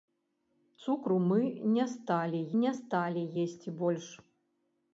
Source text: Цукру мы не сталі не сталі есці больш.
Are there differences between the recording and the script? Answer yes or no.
no